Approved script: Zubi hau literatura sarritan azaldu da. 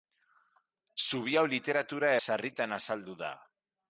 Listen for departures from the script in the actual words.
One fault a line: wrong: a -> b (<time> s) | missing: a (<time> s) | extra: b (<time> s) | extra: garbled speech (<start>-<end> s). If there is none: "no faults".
no faults